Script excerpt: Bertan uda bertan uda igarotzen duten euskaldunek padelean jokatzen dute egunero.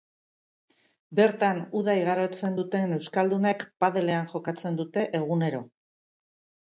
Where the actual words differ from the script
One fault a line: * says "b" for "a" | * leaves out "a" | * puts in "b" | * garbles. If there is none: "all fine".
* leaves out "bertan uda"